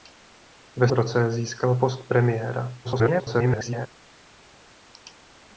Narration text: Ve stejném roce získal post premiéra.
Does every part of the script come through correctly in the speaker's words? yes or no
no